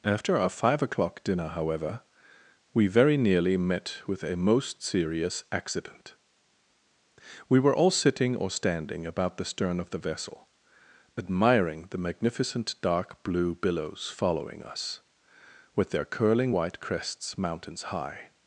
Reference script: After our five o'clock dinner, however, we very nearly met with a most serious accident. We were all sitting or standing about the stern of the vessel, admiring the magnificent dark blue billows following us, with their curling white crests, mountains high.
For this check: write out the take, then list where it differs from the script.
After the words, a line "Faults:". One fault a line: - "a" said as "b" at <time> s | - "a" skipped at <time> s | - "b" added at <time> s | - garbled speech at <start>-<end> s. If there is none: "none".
After our five o'clock dinner, however, we very nearly met with a most serious accident. We were all sitting or standing about the stern of the vessel, admiring the magnificent dark blue billows following us, with their curling white crests, mountains high.
Faults:
none